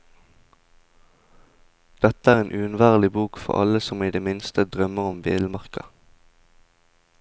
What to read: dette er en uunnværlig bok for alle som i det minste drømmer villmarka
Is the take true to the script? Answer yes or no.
no